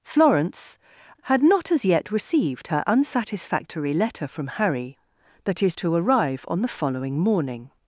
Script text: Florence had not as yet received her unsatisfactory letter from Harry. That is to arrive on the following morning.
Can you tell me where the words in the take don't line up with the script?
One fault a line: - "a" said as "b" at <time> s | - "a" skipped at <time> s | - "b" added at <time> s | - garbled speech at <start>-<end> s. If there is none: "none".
none